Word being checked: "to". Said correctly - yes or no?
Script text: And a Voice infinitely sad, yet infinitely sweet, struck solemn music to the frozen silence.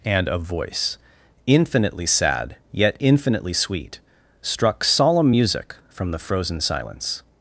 no